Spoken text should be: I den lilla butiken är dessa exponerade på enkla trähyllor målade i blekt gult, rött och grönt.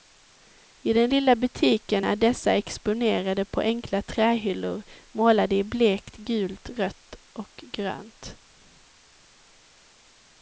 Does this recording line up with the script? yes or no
yes